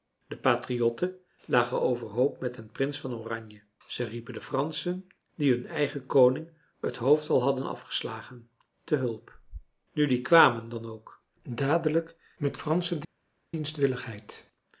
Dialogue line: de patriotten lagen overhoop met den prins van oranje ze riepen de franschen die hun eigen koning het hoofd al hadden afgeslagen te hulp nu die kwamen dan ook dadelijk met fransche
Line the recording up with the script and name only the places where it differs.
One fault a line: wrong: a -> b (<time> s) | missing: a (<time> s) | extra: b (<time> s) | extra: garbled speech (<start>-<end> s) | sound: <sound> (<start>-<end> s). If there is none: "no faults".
no faults